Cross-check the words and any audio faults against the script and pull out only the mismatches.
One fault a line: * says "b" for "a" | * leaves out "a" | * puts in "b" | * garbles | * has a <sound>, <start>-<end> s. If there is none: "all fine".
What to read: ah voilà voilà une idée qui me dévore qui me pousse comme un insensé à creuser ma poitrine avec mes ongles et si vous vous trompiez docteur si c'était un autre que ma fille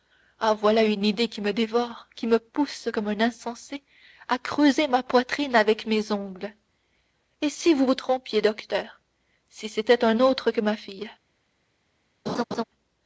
* leaves out "voilà"
* has a laugh, 12.3-12.6 s